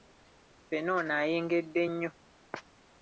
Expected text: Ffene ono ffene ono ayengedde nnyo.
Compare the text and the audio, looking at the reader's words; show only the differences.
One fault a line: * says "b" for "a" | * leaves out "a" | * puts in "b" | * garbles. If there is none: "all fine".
* leaves out "ffene ono"